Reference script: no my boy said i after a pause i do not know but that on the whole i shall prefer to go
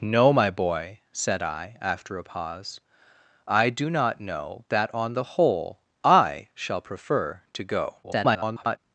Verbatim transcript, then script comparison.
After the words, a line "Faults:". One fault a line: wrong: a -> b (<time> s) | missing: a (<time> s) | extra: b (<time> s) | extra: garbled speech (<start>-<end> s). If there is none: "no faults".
no my boy said i after a pause i do not know that on the whole i shall prefer to go [garbled]
Faults:
missing: but (4.7 s)
extra: garbled speech (8.0-8.8 s)